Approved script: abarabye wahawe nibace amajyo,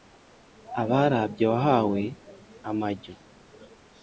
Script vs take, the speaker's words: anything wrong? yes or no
yes